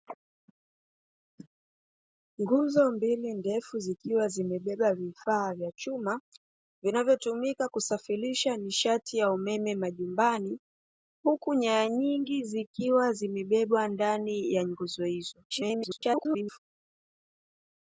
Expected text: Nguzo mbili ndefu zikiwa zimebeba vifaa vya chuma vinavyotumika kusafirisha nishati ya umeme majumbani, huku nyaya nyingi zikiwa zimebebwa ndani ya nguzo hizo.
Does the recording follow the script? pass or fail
fail